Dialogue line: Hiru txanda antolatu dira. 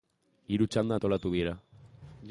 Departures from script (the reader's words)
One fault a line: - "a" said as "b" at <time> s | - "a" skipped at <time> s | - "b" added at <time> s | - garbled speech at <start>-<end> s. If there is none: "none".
none